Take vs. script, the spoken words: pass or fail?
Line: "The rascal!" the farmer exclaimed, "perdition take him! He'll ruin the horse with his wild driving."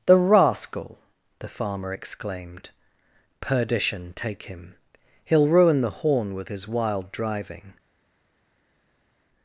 fail